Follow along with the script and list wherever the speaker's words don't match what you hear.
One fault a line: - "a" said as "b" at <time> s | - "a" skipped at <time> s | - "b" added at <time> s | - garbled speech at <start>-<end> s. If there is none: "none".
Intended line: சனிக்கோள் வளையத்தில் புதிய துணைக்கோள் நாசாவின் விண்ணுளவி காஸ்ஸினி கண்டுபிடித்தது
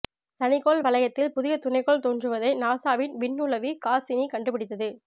- "தோன்றுவதை" added at 2.0 s